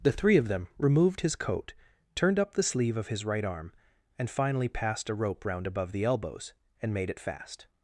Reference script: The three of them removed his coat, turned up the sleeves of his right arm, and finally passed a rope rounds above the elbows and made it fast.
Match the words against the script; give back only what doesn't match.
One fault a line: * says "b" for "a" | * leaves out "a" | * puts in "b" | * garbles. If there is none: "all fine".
* says "sleeve" for "sleeves"
* says "round" for "rounds"